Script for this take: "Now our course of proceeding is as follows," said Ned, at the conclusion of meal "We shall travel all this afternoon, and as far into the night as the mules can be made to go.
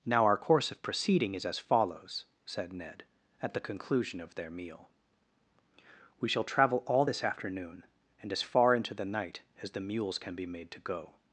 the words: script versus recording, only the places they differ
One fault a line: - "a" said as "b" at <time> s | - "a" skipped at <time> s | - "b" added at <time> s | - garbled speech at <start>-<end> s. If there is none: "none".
- "their" added at 4.3 s